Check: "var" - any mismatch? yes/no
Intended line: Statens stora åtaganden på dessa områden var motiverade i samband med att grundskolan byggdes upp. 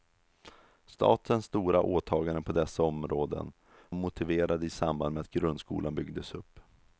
yes